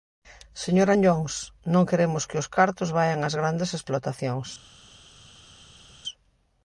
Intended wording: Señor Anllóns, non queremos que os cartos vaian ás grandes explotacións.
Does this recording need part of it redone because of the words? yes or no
no